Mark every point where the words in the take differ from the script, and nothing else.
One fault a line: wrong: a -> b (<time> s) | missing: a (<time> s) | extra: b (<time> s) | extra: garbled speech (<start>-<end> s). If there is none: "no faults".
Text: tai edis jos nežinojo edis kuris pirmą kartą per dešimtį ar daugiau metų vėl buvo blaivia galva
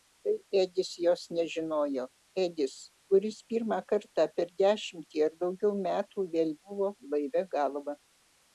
no faults